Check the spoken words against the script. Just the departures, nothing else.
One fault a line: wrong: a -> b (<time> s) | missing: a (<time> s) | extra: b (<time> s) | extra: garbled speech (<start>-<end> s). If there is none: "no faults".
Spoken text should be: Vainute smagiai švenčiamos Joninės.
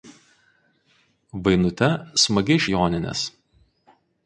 missing: švenčiamos (2.6 s)